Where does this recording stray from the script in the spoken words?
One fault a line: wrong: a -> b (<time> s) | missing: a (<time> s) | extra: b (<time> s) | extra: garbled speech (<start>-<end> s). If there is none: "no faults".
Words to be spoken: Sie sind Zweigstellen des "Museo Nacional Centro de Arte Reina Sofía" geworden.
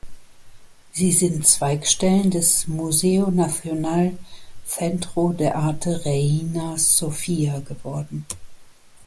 no faults